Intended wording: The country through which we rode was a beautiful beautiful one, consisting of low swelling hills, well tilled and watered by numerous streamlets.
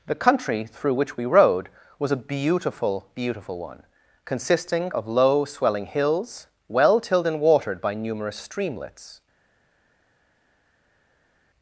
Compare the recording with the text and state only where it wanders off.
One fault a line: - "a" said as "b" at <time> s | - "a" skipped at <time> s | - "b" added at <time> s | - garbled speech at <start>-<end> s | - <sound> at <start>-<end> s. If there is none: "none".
none